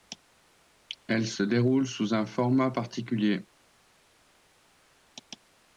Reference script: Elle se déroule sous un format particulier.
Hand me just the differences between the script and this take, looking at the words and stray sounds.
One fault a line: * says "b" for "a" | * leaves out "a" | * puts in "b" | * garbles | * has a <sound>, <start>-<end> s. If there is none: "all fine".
all fine